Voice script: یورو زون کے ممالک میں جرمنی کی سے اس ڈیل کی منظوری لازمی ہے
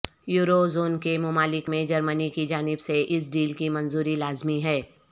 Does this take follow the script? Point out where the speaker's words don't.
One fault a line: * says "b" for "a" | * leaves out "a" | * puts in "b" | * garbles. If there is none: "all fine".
* puts in "جانب"